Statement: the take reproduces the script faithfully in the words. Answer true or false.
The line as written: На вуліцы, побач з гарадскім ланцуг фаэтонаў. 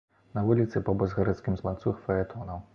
true